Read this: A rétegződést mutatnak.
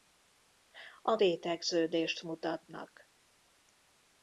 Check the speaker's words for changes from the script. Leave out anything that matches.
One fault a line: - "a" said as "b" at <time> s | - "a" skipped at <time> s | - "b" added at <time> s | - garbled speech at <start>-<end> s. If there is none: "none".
none